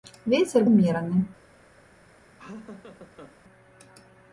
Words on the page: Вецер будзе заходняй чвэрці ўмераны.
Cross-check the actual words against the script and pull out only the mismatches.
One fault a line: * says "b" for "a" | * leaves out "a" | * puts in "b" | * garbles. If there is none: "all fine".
* leaves out "будзе заходняй чвэрці"